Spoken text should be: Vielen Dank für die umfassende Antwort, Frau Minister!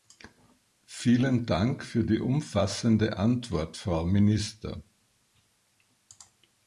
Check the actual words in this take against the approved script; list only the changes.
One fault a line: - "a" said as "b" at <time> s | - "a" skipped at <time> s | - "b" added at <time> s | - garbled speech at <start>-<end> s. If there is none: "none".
none